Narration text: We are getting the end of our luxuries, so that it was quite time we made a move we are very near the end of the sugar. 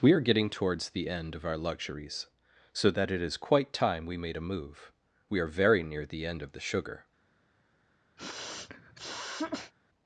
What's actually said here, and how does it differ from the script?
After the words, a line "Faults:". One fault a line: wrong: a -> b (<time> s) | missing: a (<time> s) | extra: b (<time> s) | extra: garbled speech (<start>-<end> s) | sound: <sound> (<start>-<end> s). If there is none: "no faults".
We are getting towards the end of our luxuries, so that it is quite time we made a move we are very near the end of the sugar.
Faults:
extra: towards (0.5 s)
wrong: was -> is (3.2 s)
sound: sniff (8.2-9.7 s)